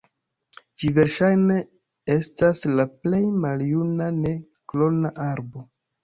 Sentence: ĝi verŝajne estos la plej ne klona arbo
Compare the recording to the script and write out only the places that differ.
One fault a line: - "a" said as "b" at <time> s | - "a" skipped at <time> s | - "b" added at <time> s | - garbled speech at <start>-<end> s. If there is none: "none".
- "estos" said as "estas" at 2.1 s
- "maljuna" added at 3.4 s